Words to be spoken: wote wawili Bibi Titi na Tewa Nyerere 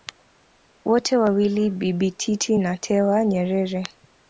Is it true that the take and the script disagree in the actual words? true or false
false